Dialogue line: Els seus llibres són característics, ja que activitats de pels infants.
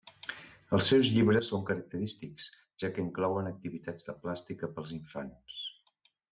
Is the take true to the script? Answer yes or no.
no